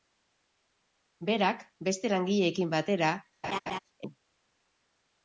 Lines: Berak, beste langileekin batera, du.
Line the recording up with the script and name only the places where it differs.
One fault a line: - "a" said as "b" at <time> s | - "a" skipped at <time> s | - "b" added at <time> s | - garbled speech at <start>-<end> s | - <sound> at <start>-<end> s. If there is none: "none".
- laugh at 3.4-3.8 s